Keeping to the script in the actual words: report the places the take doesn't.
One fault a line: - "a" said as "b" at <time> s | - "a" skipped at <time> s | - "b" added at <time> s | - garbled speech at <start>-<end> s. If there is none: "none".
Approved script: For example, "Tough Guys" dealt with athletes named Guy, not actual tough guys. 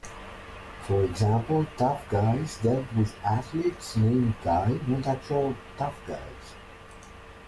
none